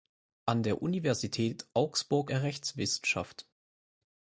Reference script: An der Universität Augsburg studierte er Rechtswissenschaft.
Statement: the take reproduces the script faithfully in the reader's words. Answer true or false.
false